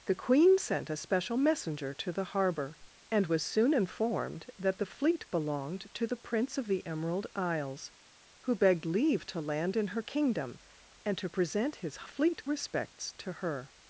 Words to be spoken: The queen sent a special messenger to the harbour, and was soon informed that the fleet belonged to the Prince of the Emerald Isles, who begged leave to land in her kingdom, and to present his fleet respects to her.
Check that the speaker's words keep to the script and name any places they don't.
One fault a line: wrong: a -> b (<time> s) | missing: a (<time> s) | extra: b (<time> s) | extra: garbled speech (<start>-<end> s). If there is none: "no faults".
no faults